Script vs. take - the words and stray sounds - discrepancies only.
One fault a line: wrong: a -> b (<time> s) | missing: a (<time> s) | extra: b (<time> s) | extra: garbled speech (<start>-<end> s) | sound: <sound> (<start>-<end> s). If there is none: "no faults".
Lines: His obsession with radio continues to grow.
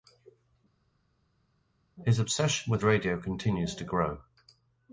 no faults